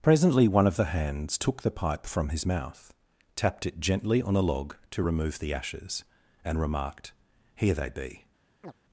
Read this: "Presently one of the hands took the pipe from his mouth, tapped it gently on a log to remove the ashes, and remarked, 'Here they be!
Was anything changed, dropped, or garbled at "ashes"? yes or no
no